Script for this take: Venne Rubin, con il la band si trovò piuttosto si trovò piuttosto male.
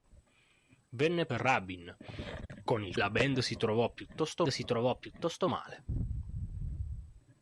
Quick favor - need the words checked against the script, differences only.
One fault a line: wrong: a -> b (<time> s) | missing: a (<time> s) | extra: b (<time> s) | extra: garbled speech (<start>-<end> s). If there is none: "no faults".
no faults